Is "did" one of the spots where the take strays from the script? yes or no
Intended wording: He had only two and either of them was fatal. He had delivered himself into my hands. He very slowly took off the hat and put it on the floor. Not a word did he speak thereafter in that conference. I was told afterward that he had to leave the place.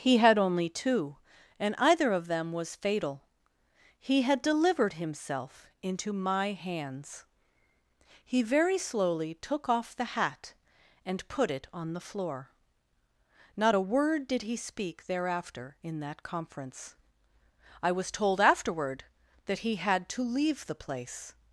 no